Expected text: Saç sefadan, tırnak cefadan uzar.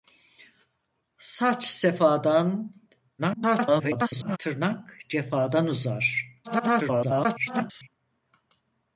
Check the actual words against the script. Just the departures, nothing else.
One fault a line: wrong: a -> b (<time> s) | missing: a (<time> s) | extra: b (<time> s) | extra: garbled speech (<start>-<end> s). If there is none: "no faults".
extra: garbled speech (3.2-4.4 s)
extra: garbled speech (6.4-7.9 s)